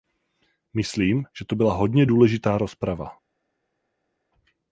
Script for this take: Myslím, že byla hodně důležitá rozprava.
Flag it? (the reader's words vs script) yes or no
yes